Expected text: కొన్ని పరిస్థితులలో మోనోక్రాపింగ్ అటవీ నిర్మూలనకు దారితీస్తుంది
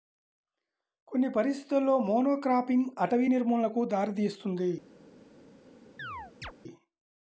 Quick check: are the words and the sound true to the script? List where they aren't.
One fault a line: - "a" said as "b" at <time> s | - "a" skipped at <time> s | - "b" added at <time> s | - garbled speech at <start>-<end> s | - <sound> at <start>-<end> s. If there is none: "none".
- chirp at 6.0-6.5 s